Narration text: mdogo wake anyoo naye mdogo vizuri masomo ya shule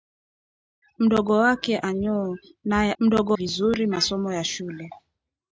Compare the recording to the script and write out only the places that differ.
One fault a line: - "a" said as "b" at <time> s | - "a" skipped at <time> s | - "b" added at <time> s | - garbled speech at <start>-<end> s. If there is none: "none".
none